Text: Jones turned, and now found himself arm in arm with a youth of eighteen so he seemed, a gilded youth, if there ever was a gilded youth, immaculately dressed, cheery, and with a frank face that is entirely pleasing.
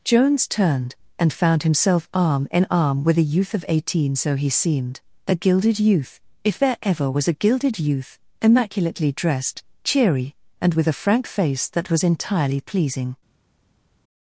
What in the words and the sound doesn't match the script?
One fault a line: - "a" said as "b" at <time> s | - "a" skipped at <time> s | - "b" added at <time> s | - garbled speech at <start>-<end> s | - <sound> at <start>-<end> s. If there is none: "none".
- "now" skipped at 1.3 s
- "is" said as "was" at 11.9 s